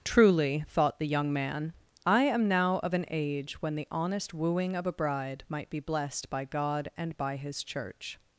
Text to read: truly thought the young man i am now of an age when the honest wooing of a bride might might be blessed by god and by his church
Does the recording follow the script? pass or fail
fail